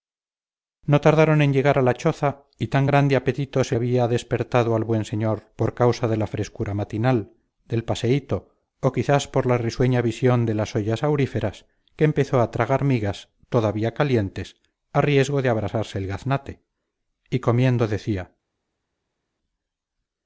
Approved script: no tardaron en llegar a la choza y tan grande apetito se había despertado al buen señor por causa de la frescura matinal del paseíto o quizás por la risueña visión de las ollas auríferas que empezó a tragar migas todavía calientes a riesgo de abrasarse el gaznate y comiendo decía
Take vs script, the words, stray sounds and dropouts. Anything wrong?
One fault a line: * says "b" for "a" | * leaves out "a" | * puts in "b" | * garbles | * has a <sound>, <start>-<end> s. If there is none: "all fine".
all fine